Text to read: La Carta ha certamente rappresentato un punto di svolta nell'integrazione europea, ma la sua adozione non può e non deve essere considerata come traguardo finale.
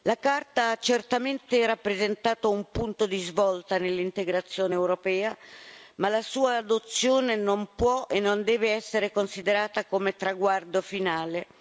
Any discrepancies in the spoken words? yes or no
no